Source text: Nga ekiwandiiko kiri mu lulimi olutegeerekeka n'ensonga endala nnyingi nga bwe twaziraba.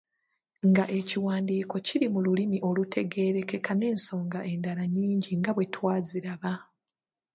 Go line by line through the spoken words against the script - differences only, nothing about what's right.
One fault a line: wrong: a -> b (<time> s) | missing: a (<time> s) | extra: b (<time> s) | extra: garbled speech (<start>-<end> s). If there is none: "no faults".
no faults